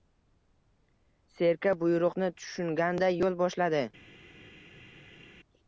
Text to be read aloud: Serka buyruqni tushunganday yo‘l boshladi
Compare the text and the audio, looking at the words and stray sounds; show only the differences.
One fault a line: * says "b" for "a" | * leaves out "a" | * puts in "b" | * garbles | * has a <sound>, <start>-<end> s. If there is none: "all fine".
all fine